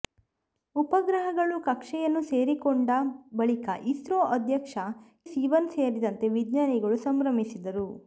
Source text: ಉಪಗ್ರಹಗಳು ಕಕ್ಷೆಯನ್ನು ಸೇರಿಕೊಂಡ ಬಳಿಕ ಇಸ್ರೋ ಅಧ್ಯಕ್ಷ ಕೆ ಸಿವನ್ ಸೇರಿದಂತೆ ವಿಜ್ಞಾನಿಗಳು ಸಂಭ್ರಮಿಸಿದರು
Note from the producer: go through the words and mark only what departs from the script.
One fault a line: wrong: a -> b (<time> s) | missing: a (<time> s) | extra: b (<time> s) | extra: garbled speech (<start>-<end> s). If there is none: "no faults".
missing: ಕೆ (4.8 s)